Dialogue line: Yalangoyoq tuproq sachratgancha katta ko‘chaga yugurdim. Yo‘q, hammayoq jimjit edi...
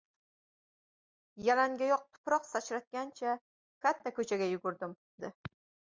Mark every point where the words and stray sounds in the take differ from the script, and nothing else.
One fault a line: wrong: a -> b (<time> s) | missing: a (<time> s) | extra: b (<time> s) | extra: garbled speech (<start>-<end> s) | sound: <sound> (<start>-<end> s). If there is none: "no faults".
missing: Yo‘q hammayoq jimjit (5.0 s)